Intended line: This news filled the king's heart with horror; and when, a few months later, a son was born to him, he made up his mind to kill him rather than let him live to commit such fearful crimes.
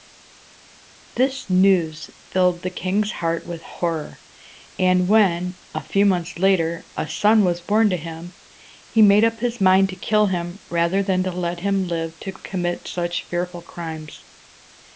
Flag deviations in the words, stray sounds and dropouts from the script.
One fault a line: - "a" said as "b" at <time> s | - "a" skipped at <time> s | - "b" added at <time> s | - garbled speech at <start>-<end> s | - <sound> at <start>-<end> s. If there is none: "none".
none